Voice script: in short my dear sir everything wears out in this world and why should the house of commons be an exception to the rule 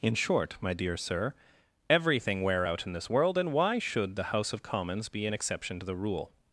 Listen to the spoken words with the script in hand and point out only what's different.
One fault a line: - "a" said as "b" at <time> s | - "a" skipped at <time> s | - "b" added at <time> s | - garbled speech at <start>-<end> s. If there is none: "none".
- "wears" said as "wear" at 2.4 s